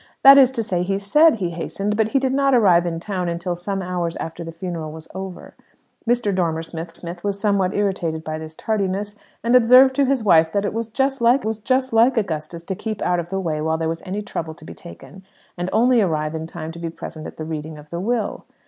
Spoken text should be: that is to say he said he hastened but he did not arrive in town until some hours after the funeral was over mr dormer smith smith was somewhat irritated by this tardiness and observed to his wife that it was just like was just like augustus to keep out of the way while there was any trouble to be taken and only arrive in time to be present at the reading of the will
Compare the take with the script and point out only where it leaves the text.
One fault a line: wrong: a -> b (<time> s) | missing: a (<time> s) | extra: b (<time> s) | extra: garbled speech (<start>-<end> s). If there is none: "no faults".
no faults